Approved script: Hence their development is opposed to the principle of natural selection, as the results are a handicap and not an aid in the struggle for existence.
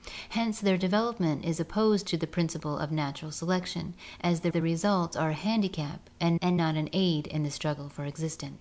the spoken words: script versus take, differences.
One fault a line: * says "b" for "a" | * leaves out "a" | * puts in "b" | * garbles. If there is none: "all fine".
* puts in "the"
* puts in "and"